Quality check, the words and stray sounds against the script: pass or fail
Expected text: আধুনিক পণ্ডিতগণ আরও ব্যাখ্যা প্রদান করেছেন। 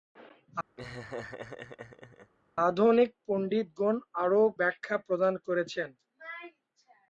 fail